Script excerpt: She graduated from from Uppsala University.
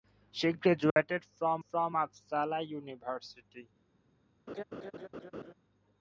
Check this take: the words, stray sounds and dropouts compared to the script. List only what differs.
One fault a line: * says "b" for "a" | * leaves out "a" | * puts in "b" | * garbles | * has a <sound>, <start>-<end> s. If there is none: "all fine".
* has a dropout, 0.9-1.0 s
* has a laugh, 4.5-5.5 s